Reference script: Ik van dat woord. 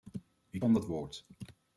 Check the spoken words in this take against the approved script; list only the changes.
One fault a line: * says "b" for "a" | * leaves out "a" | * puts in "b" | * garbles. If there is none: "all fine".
all fine